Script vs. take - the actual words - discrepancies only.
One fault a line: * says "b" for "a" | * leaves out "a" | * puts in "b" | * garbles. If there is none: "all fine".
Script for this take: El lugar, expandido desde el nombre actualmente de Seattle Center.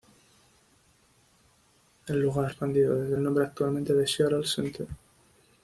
all fine